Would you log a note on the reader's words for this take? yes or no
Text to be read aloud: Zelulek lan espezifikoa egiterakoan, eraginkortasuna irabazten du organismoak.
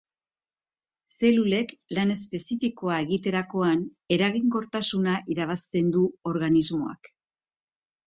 no